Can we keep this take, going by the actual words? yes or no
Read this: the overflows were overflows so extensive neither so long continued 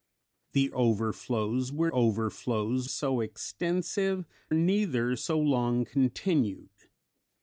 yes